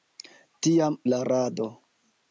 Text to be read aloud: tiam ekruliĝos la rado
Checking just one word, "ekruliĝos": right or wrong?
wrong